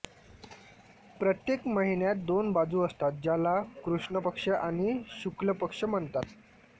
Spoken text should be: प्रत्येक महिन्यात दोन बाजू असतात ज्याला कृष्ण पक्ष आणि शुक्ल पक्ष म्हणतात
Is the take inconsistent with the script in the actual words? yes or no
no